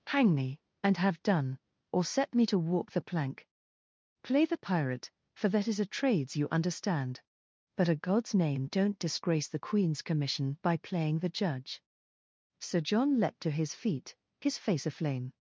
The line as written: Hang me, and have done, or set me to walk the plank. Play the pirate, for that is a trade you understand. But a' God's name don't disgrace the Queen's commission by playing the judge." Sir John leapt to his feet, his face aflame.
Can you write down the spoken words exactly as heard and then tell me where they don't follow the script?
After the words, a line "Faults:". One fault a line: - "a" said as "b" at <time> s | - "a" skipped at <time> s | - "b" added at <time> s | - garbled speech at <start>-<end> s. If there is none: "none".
Hang me, and have done, or set me to walk the plank. Play the pirate, for that is a trades you understand. But a' God's name don't disgrace the Queen's commission by playing the judge." Sir John leapt to his feet, his face aflame.
Faults:
- "trade" said as "trades" at 5.8 s